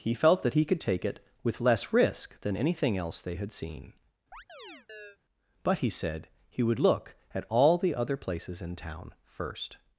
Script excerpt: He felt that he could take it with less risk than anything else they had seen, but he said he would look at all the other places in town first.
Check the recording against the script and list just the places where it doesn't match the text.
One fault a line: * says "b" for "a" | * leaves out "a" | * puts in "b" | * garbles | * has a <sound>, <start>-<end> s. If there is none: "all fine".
* has a chirp, 4.3-5.2 s